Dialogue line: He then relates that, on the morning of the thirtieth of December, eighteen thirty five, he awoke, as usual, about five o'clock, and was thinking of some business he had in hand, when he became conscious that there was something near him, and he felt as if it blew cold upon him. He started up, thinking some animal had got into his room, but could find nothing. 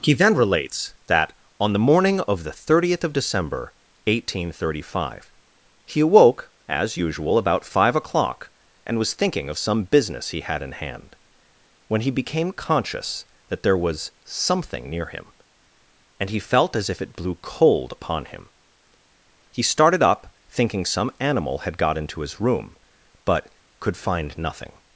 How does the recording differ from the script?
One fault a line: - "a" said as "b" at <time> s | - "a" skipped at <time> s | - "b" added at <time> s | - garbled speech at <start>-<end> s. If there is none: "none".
none